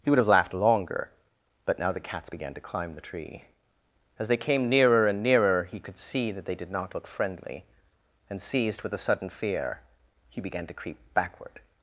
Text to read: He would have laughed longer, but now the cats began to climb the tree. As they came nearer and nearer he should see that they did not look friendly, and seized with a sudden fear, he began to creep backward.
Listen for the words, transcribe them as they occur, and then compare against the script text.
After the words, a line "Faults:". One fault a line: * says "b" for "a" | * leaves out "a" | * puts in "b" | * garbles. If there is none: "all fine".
He would have laughed longer, but now the cats began to climb the tree. As they came nearer and nearer he could see that they did not look friendly, and seized with a sudden fear, he began to creep backward.
Faults:
* says "could" for "should"